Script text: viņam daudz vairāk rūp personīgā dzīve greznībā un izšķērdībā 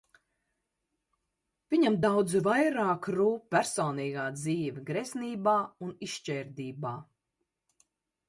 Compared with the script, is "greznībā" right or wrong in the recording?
right